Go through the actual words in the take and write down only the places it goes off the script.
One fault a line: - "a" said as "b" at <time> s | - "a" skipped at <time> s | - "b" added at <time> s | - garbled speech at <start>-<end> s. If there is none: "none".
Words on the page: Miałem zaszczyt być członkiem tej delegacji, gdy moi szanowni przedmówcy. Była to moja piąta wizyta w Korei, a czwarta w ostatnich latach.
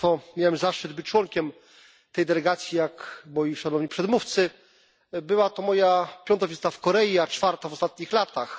- "gdy" said as "jak" at 2.8 s